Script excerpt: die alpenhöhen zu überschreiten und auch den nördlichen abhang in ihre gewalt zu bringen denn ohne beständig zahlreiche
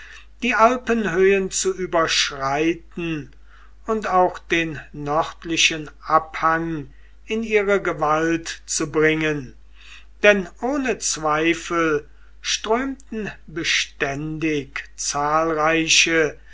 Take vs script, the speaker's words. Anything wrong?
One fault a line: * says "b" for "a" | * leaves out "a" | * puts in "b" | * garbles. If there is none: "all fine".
* puts in "zweifel strömten"